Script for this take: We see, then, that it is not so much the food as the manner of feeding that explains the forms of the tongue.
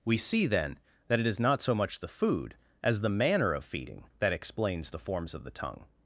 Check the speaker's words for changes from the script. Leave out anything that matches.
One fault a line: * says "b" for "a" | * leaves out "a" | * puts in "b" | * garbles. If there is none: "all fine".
all fine